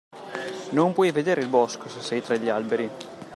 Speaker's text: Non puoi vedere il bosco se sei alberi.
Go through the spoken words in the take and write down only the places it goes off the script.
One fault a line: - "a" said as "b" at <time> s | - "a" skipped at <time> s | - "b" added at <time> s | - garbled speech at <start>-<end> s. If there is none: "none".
- "tra gli" added at 2.2 s